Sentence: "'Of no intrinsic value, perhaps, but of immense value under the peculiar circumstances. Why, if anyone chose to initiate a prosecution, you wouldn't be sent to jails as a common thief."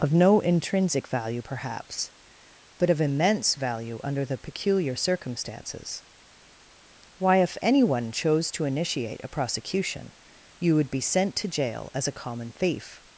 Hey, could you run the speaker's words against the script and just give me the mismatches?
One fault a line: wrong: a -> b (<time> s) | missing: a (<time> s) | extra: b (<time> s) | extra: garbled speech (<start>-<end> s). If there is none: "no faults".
wrong: wouldn't -> would (10.7 s)
wrong: jails -> jail (11.5 s)